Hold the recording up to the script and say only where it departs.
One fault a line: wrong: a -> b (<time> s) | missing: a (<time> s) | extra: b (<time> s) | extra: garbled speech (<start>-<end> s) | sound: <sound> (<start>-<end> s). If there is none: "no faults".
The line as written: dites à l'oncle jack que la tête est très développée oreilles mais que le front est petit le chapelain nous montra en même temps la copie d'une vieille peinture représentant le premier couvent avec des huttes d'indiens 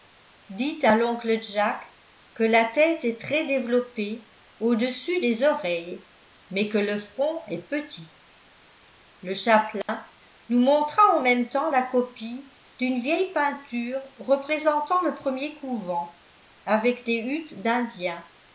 extra: au dessus des (4.6 s)
sound: dropout (9.8-9.9 s)